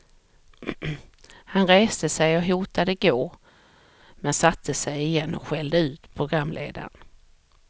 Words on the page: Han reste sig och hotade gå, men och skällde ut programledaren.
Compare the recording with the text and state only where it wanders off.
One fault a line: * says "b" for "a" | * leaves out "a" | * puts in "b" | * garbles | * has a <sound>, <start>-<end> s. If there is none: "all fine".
* puts in "satte sig igen"